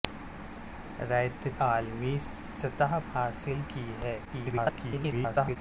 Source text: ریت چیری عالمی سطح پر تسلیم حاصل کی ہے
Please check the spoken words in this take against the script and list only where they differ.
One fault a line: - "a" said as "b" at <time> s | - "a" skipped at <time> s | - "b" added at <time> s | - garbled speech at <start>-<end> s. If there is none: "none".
- "چیری" skipped at 1.5 s
- "پر تسلیم" skipped at 3.0 s
- garbled speech at 4.2-5.6 s